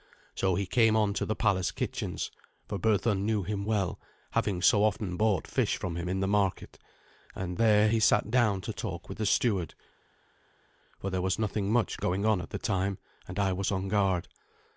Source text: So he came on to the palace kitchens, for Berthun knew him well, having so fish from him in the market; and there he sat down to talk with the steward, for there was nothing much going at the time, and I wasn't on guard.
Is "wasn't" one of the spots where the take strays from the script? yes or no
yes